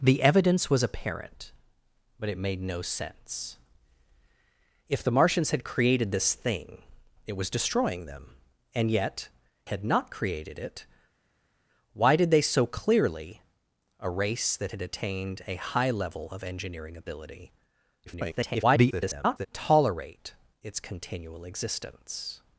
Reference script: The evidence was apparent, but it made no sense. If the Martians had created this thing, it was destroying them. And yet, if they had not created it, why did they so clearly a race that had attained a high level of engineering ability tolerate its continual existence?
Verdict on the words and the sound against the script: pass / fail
fail